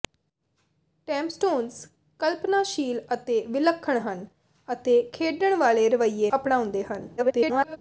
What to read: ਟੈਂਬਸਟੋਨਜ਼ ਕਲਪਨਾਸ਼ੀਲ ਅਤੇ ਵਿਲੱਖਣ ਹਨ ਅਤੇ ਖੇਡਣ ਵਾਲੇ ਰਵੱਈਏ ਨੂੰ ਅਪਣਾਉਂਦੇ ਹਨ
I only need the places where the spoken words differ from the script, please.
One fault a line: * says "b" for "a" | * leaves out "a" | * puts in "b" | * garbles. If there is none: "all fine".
* leaves out "ਨੂੰ"
* garbles